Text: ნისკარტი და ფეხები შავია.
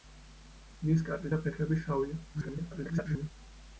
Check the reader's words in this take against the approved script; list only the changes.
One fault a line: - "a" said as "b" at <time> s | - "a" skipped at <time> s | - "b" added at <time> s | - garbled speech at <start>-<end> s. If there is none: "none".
- garbled speech at 2.3-3.3 s